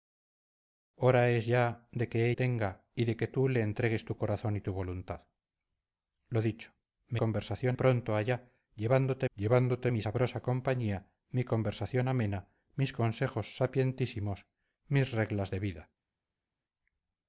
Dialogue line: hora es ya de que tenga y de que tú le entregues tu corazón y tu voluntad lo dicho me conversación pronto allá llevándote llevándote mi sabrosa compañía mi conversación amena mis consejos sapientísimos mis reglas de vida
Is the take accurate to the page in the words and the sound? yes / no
yes